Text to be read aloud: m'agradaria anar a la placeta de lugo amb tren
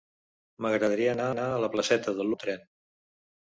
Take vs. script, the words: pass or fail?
fail